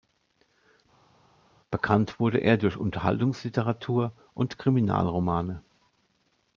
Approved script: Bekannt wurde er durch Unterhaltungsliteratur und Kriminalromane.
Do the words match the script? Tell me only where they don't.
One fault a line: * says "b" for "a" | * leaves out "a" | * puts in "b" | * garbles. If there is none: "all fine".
all fine